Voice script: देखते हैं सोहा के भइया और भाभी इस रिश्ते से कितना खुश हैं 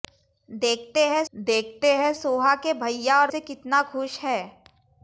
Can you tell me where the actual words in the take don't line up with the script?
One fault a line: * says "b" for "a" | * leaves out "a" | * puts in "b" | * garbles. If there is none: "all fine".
* puts in "देखते हैं"
* leaves out "भाभी इस रिश्ते"